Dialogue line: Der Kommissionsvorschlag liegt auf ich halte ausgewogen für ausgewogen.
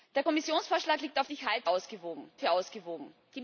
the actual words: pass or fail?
pass